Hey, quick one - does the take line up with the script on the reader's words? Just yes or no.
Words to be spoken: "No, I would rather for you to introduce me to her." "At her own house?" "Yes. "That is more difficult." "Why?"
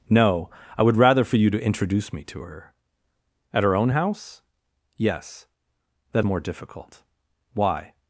no